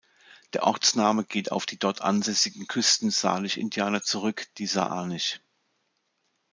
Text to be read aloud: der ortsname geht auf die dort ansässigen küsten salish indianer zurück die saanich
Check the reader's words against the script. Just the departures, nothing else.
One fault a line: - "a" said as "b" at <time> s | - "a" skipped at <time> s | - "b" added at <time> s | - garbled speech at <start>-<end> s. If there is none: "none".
none